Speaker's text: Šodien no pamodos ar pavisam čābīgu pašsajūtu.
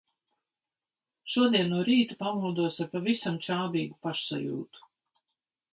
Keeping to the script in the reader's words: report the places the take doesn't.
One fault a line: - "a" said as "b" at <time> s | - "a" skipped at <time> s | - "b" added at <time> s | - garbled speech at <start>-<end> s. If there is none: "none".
- "rīta" added at 1.9 s